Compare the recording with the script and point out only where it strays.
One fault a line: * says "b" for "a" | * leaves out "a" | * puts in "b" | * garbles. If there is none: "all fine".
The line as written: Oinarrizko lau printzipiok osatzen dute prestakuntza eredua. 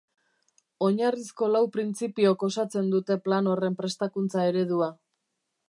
* puts in "plan horren"